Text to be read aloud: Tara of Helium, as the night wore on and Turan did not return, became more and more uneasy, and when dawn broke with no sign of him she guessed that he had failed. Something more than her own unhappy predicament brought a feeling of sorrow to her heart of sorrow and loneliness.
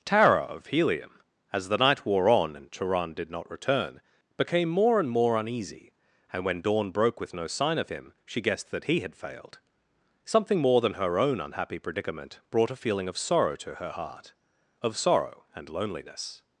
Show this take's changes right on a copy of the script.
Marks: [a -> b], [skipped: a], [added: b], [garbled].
Tara of Helium, as the night wore on and Turan did not return, became more and more uneasy, and when dawn broke with no sign of him she guessed that he had failed. Something more than her own unhappy predicament brought a feeling of sorrow to her heart of sorrow and loneliness.